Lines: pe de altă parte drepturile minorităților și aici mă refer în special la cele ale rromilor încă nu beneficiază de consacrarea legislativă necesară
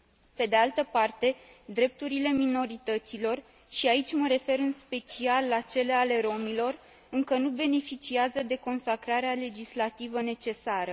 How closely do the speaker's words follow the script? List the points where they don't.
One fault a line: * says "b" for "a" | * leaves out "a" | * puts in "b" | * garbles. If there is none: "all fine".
all fine